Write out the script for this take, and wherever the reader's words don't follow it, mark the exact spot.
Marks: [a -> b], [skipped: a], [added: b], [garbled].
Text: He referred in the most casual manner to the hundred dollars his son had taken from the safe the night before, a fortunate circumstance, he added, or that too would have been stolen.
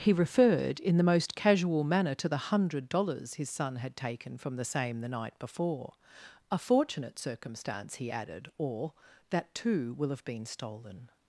He referred in the most casual manner to the hundred dollars his son had taken from the [safe -> same] the night before, a fortunate circumstance, he added, or that too [would -> will] have been stolen.